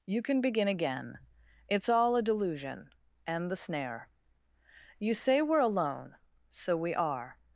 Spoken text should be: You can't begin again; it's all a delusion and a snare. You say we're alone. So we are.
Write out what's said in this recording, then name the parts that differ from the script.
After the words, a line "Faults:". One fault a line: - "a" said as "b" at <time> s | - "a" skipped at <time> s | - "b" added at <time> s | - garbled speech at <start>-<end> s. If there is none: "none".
You can begin again; it's all a delusion and the snare. You say we're alone. So we are.
Faults:
- "can't" said as "can" at 0.2 s
- "a" said as "the" at 3.5 s